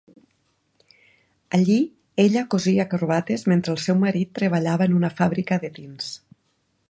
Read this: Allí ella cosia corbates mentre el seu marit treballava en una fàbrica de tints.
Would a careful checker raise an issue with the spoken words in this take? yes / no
no